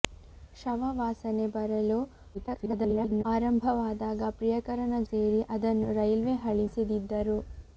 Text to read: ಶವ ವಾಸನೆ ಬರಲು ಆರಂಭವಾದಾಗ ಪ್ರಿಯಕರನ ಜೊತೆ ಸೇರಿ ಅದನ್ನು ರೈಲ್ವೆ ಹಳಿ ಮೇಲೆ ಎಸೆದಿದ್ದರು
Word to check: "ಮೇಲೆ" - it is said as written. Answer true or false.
false